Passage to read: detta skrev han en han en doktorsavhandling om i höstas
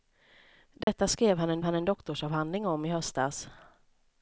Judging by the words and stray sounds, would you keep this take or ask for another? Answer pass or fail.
fail